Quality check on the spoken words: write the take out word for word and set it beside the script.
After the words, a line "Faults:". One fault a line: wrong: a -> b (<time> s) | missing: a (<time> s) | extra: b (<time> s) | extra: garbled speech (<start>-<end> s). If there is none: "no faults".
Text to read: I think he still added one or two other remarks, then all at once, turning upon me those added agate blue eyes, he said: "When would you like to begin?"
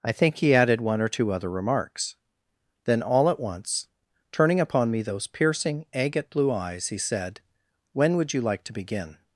I think he added one or two other remarks, then all at once, turning upon me those piercing agate blue eyes, he said: "When would you like to begin?"
Faults:
missing: still (0.6 s)
wrong: added -> piercing (5.3 s)